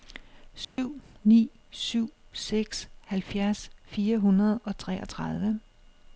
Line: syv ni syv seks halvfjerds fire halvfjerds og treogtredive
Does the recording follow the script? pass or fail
fail